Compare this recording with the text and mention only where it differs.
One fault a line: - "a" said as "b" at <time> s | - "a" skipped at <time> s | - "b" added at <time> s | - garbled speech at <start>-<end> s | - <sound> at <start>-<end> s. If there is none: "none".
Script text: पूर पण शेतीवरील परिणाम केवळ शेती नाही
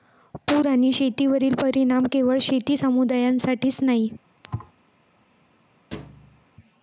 - "पण" said as "आणि" at 0.7 s
- "समुदायासाठीच" added at 2.8 s
- thud at 4.4-4.7 s
- thud at 5.9-6.5 s